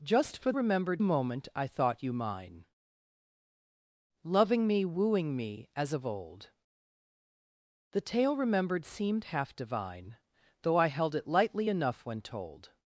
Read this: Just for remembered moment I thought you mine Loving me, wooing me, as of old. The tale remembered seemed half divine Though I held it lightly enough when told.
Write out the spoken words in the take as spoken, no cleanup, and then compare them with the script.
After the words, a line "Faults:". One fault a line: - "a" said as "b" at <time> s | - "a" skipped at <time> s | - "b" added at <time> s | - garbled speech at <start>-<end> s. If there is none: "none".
Just for remembered moment I thought you mine Loving me, wooing me, as of old. The tale remembered seemed half divine Though I held it lightly enough when told.
Faults:
none